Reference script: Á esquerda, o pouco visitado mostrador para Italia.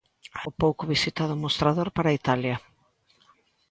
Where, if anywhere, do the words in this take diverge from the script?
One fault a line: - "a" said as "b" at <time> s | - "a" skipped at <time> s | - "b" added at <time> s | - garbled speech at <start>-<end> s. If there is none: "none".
- "esquerda" skipped at 0.4 s